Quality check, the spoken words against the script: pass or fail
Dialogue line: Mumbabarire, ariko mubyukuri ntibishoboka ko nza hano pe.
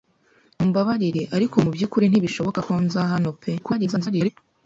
fail